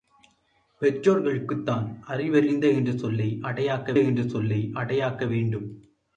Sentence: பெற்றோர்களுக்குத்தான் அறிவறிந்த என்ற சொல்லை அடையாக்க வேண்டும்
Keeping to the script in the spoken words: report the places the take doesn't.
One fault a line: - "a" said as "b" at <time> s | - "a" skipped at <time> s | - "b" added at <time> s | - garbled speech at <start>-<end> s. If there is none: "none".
- "என்ற சொல்லை அடையாக்க" added at 4.0 s